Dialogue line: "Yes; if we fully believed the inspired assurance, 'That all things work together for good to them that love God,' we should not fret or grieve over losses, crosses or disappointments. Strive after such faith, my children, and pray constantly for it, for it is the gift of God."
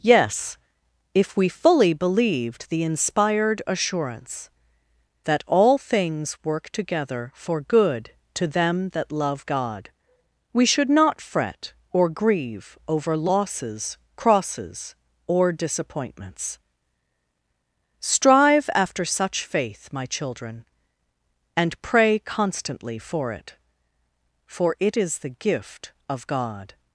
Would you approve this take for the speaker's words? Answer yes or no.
yes